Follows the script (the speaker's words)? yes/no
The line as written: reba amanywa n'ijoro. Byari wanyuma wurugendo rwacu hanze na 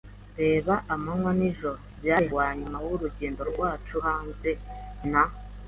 yes